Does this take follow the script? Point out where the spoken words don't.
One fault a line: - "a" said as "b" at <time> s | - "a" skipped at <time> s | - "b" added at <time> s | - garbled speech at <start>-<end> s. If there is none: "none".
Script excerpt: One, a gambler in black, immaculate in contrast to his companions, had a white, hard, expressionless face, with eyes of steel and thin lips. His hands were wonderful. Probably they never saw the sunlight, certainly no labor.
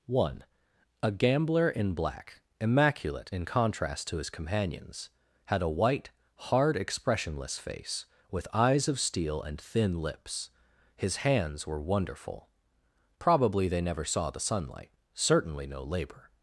none